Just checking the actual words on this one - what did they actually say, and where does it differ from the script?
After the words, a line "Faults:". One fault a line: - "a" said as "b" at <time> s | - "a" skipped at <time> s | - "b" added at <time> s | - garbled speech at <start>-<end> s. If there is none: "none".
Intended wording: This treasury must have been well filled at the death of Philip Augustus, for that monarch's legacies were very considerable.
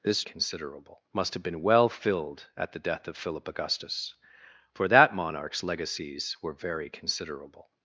This considerable must have been well filled at the death of Philip Augustus, for that monarch's legacies were very considerable.
Faults:
- "treasury" said as "considerable" at 0.2 s